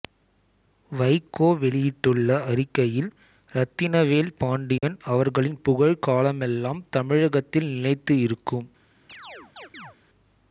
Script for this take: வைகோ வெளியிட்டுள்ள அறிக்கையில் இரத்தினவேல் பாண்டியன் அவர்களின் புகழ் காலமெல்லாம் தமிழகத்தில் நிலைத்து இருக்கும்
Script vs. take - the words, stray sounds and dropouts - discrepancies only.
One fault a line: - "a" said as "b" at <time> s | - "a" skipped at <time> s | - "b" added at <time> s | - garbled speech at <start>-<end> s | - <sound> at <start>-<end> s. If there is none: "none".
- dropout at 4.8-4.8 s
- chirp at 9.1-10.0 s